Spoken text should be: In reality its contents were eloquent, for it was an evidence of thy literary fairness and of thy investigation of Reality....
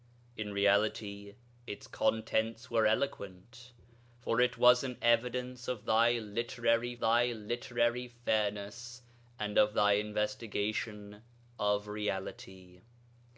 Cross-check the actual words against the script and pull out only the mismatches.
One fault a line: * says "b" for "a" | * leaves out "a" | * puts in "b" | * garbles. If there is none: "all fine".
* puts in "thy literary"